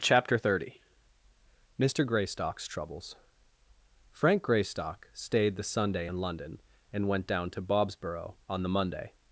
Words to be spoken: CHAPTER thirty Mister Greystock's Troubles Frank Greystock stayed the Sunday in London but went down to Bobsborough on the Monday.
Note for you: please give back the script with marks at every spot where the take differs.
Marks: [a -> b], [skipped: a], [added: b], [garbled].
CHAPTER thirty Mister Greystock's Troubles Frank Greystock stayed the Sunday in London [but -> and] went down to Bobsborough on the Monday.